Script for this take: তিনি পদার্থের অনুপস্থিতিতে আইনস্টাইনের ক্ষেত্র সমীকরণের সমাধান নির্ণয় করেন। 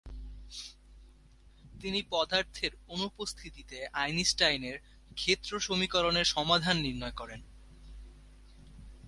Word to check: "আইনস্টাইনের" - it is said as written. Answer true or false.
true